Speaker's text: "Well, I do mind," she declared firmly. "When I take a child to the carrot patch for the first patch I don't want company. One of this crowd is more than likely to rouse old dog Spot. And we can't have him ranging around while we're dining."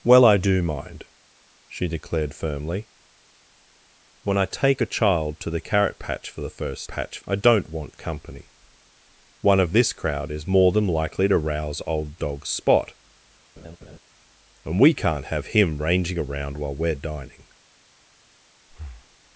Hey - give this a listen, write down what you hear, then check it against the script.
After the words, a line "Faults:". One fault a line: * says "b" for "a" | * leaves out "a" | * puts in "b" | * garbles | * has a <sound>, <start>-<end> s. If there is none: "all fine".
"Well, I do mind," she declared firmly. "When I take a child to the carrot patch for the first patch I don't want company. One of this crowd is more than likely to rouse old dog Spot. And we can't have him ranging around while we're dining."
Faults:
* has a laugh, 13.6-14.0 s
* has a breath, 18.7-19.2 s